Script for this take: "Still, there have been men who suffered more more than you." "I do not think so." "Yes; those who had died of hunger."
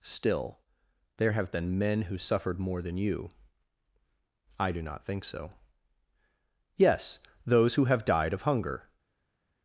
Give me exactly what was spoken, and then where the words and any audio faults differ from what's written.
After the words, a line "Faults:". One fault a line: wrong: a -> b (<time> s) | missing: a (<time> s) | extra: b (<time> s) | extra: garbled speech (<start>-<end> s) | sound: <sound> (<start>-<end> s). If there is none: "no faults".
"Still, there have been men who suffered more than you." "I do not think so." "Yes; those who have died of hunger."
Faults:
missing: more (2.8 s)
wrong: had -> have (7.9 s)